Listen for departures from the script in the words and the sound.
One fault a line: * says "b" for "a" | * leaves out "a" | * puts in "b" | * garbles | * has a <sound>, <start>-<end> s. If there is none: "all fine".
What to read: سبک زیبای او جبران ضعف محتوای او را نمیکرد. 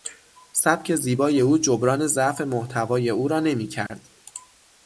* has a dropout, 3.9-3.9 s